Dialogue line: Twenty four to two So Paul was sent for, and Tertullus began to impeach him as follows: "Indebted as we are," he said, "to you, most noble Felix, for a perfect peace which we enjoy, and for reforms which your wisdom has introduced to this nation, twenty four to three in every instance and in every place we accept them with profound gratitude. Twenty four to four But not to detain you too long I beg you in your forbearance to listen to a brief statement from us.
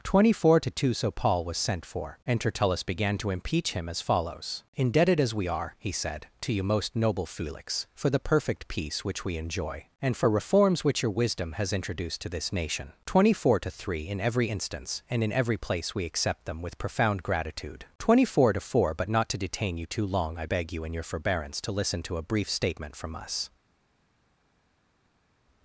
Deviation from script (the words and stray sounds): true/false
true